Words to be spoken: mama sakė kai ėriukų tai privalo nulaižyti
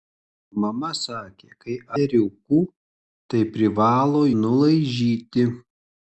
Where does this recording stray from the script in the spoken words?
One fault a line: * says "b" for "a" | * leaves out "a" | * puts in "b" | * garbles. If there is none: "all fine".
all fine